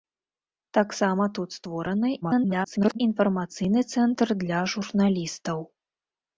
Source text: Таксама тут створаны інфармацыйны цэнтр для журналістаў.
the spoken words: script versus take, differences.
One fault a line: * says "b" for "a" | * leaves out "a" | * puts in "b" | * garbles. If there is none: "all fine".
* garbles